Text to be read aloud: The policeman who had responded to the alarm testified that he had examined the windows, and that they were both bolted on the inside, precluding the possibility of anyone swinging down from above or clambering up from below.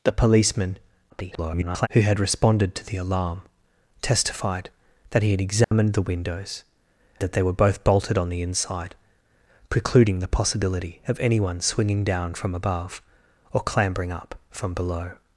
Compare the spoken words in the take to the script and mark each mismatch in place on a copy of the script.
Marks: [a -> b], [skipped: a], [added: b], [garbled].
The policeman [garbled] who had responded to the alarm testified that he had examined the windows, [skipped: and] that they were both bolted on the inside, precluding the possibility of anyone swinging down from above or clambering up from below.